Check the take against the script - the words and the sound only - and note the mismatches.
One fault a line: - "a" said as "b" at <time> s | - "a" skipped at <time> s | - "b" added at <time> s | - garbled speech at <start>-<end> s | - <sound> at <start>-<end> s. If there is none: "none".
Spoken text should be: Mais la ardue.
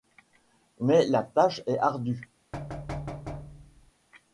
- "tâche est" added at 1.2 s
- thud at 2.5-3.9 s